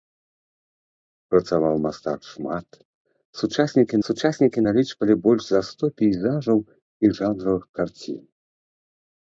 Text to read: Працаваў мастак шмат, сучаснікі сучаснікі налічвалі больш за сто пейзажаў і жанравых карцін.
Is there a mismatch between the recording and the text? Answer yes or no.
no